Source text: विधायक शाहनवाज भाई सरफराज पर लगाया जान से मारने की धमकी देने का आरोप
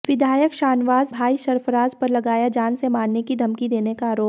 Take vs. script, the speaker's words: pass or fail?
pass